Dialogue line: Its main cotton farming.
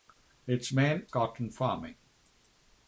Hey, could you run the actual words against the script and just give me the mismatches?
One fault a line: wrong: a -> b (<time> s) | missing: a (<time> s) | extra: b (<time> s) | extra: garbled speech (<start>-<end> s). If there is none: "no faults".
no faults